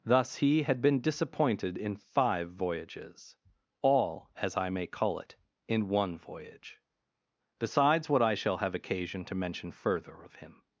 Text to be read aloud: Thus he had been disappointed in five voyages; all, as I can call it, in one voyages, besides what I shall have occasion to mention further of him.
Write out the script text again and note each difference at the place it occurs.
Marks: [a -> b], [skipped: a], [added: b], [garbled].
Thus he had been disappointed in five voyages; all, as I [can -> may] call it, in one [voyages, -> voyage] besides what I shall have occasion to mention further of him.